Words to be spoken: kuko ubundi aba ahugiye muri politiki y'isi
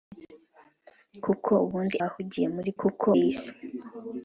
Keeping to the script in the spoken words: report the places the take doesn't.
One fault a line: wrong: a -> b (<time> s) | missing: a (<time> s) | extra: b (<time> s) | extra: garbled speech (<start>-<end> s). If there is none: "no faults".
missing: aba (2.0 s)
wrong: politiki -> kuko (2.8 s)